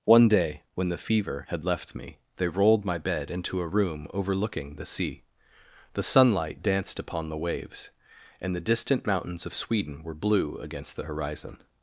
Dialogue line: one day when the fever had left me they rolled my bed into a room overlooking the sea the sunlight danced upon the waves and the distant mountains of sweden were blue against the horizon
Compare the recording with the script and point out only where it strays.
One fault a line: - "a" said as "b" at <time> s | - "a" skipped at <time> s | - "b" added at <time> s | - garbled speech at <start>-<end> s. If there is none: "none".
none